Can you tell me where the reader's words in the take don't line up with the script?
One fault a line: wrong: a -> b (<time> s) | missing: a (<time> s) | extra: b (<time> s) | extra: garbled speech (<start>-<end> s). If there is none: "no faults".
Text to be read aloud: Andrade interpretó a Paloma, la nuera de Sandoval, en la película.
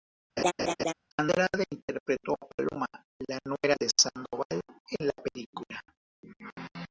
no faults